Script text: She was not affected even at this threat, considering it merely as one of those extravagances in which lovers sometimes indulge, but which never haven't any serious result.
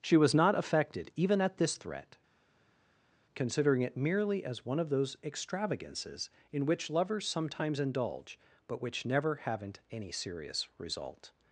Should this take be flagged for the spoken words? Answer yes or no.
no